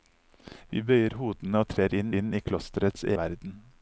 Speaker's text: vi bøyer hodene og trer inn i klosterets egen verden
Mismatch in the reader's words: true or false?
true